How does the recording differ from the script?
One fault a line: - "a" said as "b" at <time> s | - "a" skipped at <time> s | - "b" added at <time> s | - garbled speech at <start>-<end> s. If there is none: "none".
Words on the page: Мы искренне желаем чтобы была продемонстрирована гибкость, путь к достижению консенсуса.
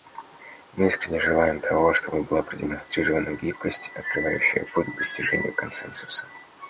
- "того" added at 1.6 s
- "открывающая" added at 3.9 s